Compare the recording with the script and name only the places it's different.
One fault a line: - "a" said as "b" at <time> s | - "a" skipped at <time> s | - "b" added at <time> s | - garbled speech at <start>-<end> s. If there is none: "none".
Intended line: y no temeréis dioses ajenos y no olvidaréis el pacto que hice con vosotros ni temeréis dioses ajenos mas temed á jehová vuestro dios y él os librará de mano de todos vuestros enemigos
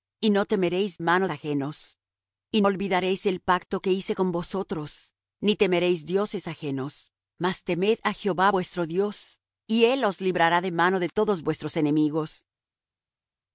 - "dioses" said as "mano" at 1.0 s
- "no" skipped at 2.6 s